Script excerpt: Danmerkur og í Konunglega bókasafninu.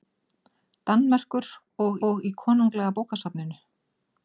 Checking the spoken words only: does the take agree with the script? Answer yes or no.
no